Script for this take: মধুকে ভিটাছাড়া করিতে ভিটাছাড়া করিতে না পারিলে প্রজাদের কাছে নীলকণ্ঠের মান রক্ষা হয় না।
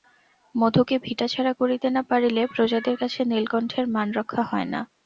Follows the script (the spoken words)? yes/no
no